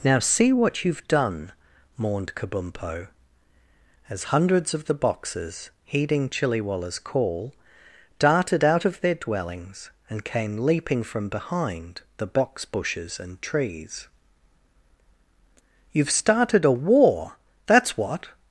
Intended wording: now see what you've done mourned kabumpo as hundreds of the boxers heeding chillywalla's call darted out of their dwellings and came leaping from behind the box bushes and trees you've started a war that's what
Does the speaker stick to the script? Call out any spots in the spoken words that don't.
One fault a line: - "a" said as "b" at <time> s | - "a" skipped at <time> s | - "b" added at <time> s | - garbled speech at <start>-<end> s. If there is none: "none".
none